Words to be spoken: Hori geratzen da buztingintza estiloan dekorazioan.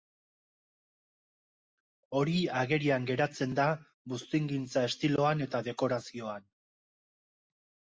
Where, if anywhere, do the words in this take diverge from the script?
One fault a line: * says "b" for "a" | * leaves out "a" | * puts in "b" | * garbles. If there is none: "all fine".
* puts in "agerian"
* puts in "eta"